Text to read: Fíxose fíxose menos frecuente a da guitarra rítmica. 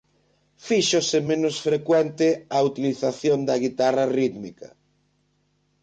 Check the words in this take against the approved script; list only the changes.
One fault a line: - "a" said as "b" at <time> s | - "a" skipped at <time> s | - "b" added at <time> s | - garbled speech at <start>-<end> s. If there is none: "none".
- "fíxose" skipped at 1.2 s
- "utilización" added at 2.7 s